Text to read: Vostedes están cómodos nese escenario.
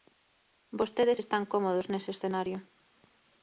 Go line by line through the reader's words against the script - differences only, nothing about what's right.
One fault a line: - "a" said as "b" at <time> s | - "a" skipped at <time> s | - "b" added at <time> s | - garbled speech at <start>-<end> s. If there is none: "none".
none